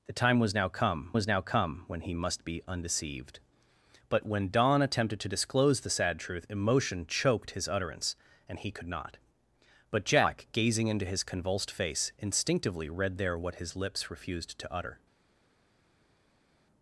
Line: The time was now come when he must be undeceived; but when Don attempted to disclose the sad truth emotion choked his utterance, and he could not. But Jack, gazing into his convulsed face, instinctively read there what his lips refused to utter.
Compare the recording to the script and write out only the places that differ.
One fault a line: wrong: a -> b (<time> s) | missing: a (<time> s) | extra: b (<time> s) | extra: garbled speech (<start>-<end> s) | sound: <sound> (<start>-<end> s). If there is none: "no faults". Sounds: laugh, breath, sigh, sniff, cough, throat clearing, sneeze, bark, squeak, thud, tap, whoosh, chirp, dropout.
extra: was now come (1.1 s)